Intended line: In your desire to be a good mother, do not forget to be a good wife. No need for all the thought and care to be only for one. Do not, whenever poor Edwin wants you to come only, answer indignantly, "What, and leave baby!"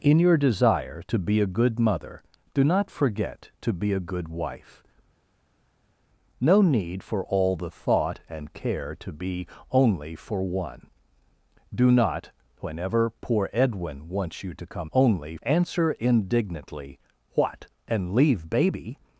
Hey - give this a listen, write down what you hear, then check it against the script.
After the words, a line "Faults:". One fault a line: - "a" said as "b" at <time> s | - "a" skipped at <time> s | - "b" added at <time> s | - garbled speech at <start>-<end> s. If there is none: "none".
In your desire to be a good mother, do not forget to be a good wife. No need for all the thought and care to be only for one. Do not, whenever poor Edwin wants you to come only, answer indignantly, "What, and leave baby!"
Faults:
none